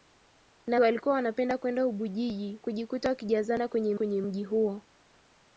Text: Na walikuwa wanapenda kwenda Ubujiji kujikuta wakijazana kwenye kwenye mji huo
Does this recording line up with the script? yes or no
yes